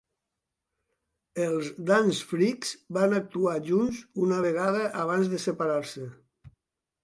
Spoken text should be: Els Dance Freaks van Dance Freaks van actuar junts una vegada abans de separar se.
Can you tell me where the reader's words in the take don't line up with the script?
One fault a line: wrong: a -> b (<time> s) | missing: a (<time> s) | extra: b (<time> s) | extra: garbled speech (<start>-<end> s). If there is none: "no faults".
missing: Dance Freaks van (3.1 s)